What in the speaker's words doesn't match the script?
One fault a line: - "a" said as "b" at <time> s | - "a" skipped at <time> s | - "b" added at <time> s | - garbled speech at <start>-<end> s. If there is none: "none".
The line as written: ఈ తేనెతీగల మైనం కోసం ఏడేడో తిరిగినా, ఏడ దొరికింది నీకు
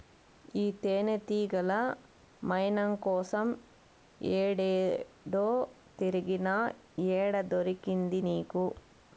none